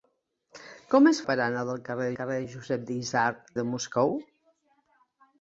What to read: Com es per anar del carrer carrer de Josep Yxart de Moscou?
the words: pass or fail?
pass